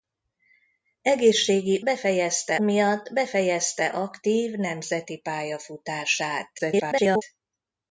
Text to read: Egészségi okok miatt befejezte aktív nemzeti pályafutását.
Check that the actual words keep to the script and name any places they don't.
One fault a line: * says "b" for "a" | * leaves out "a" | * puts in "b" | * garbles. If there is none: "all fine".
* says "befejezte" for "okok"
* garbles